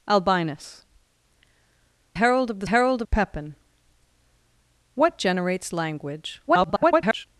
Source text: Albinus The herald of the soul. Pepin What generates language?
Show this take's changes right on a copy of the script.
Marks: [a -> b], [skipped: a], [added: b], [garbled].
Albinus [skipped: The] herald of the [soul. -> herald] Pepin What generates language? [garbled]